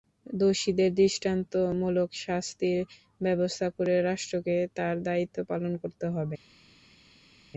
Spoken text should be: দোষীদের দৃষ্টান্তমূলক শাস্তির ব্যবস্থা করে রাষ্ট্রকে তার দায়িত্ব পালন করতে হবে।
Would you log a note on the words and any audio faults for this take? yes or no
no